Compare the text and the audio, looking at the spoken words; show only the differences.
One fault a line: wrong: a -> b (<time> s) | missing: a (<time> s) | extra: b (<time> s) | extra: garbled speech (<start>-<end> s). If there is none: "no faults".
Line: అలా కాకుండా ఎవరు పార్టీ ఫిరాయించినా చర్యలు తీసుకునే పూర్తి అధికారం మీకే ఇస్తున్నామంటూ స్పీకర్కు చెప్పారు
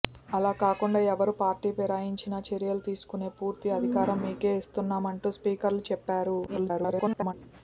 extra: garbled speech (6.5-7.3 s)